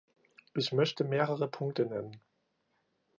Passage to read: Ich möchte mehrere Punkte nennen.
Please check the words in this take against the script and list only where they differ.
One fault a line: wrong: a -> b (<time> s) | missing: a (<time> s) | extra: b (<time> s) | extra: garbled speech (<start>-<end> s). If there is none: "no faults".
no faults